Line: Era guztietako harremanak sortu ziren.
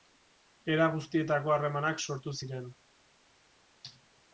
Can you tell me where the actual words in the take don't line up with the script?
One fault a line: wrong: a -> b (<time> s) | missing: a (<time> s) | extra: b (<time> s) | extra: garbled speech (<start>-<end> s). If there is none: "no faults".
no faults